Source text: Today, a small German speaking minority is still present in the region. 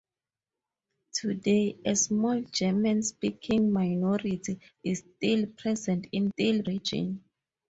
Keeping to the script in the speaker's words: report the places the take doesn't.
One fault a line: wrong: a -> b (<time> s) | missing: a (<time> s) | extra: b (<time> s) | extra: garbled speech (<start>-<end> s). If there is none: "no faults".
wrong: the -> still (6.3 s)